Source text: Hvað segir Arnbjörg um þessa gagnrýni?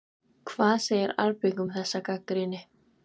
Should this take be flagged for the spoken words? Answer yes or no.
no